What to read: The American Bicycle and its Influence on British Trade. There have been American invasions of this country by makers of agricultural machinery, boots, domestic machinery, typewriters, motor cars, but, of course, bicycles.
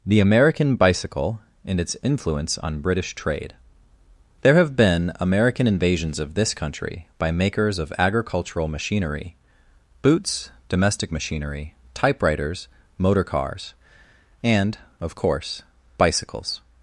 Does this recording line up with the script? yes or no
no